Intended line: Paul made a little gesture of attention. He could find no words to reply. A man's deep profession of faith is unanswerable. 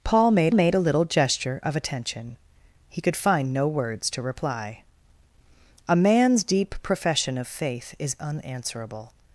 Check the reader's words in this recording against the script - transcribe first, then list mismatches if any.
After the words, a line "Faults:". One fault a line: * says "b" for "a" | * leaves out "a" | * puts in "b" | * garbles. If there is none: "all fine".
Paul made made a little gesture of attention. He could find no words to reply. A man's deep profession of faith is unanswerable.
Faults:
* puts in "made"